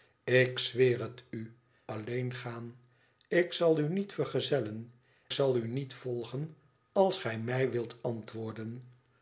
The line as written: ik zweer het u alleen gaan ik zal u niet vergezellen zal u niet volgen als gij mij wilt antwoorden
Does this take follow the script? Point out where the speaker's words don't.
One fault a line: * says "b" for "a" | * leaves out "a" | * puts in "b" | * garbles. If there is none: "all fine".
all fine